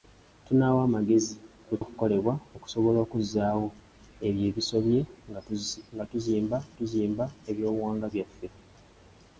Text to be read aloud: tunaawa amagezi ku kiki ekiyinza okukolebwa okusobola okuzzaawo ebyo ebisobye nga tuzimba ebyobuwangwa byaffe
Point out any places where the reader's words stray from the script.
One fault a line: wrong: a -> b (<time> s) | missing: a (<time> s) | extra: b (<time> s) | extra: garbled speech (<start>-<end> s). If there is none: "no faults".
missing: kiki ekiyinza (1.8 s)
extra: tuzimba (6.8 s)